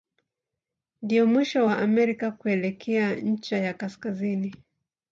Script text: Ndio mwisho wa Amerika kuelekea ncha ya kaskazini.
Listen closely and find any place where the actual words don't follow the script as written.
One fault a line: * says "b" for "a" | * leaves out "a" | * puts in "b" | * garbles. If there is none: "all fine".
all fine